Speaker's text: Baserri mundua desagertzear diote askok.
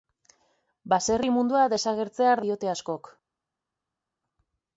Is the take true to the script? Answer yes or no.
yes